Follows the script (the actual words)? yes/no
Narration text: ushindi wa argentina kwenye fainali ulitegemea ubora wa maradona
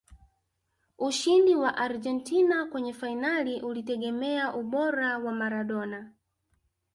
yes